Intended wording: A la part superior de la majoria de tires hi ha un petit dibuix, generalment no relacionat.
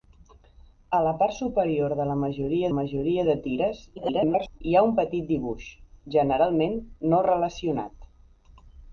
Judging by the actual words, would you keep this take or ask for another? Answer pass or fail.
fail